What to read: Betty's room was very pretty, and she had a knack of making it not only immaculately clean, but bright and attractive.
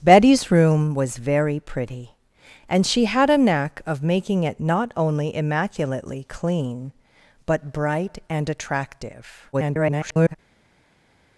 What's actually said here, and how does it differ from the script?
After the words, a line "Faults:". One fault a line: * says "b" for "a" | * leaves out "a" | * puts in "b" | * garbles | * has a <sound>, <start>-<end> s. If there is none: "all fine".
Betty's room was very pretty, and she had a knack of making it not only immaculately clean, but bright and attractive. [garbled]
Faults:
* garbles